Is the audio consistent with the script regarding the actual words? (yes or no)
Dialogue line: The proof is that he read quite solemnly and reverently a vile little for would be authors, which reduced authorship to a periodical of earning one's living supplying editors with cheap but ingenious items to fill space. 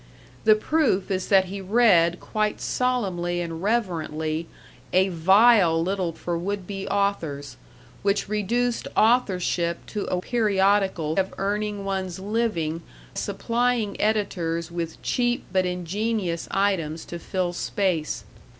yes